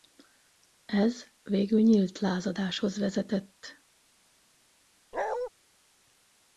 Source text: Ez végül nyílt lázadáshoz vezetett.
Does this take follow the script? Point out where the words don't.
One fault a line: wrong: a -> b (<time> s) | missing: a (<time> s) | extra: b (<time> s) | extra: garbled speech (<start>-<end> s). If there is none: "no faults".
no faults